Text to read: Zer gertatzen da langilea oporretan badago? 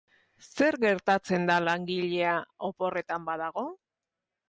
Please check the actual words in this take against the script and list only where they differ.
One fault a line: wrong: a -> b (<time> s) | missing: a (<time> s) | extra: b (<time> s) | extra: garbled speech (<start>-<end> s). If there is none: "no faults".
no faults